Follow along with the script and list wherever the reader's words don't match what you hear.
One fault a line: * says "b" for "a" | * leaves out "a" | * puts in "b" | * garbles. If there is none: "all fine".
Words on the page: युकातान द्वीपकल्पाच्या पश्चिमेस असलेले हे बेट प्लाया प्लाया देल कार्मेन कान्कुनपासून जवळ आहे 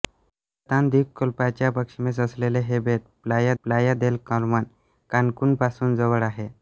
all fine